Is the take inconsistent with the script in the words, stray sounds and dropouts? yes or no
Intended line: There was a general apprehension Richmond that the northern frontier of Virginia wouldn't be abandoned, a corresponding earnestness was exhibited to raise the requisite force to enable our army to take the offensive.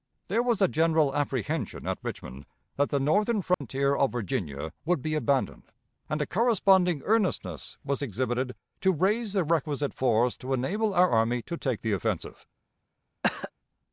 yes